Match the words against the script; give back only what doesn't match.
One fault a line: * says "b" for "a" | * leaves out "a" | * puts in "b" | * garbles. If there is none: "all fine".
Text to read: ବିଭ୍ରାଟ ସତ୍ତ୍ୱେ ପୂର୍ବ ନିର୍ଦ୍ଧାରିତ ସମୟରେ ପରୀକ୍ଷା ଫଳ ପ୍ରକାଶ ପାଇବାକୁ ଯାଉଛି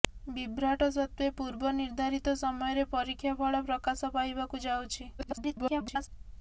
* garbles